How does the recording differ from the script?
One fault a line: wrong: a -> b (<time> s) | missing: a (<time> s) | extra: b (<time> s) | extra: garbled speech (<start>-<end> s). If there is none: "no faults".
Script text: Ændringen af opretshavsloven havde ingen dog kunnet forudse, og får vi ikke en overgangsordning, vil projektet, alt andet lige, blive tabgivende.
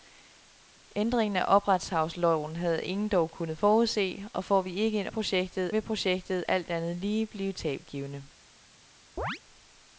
wrong: overgangsordning -> projektet (5.1 s)